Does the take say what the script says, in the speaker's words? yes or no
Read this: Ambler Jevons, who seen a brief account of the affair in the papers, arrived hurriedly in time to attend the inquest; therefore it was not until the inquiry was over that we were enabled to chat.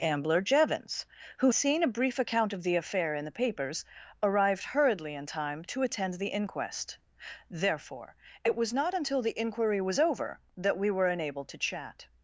yes